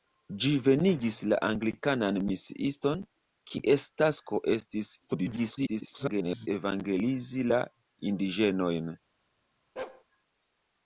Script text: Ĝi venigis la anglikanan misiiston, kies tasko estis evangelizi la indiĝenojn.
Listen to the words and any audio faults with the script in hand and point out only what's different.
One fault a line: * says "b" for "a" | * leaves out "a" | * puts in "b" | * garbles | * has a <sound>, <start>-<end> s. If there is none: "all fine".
* garbles
* has a bark, 9.8-10.0 s